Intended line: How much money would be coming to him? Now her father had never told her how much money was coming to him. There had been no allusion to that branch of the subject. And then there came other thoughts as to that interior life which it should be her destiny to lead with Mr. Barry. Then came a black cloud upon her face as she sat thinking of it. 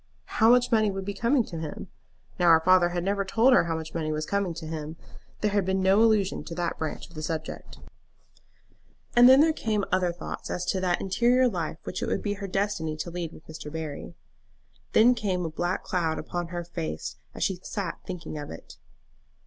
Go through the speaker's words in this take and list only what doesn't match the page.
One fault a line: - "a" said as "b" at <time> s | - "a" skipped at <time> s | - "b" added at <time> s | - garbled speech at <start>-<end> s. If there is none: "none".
- "should" said as "would" at 12.1 s